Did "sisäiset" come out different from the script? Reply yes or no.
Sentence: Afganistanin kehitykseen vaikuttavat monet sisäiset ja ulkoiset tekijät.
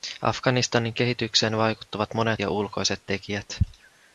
yes